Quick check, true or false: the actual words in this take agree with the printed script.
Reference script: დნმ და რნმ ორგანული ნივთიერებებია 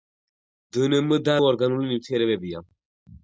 false